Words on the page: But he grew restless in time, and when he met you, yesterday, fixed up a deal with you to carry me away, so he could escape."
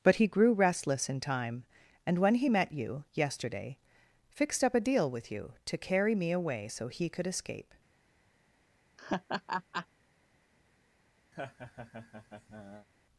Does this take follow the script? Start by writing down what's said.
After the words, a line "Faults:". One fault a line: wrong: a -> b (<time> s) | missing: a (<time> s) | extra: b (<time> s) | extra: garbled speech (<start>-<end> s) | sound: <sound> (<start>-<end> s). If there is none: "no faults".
But he grew restless in time, and when he met you, yesterday, fixed up a deal with you to carry me away, so he could escape."
Faults:
sound: laugh (9.0-9.9 s)
sound: laugh (11.3-12.9 s)